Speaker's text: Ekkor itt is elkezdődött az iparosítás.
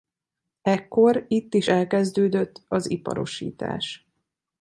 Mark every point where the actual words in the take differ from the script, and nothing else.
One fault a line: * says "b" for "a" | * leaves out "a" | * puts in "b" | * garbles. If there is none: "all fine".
all fine